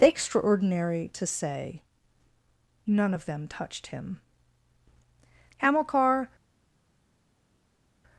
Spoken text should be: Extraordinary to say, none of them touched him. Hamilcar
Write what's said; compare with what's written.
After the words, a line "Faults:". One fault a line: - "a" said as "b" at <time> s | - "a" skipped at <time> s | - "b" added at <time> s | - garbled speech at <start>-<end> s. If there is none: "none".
Extraordinary to say, none of them touched him. Hamilcar
Faults:
none